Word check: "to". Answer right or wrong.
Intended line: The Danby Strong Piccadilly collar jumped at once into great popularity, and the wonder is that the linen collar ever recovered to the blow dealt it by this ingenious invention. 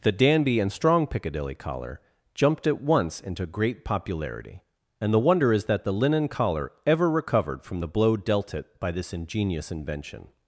wrong